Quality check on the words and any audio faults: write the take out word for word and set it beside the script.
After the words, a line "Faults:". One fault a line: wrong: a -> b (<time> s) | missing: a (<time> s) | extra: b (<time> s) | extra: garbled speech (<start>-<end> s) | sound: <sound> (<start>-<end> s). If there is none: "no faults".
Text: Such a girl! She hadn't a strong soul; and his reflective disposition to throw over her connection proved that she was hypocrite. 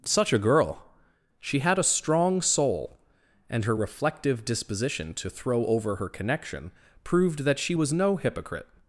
Such a girl! She had a strong soul; and her reflective disposition to throw over her connection proved that she was no hypocrite.
Faults:
wrong: hadn't -> had (1.6 s)
wrong: his -> her (3.6 s)
extra: no (7.9 s)